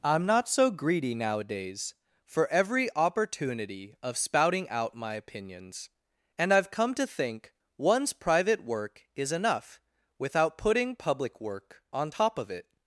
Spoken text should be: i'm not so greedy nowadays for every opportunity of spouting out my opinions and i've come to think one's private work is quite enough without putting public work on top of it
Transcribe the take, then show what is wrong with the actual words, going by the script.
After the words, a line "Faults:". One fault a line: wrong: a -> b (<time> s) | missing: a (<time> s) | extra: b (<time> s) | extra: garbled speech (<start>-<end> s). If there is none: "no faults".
i'm not so greedy nowadays for every opportunity of spouting out my opinions and i've come to think one's private work is enough without putting public work on top of it
Faults:
missing: quite (9.3 s)